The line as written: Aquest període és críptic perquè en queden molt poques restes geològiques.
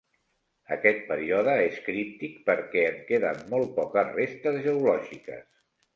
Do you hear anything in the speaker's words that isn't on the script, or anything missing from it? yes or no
no